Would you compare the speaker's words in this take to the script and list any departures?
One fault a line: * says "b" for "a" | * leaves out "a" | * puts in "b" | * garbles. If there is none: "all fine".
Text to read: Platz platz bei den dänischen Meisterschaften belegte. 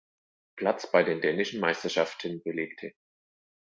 * leaves out "platz"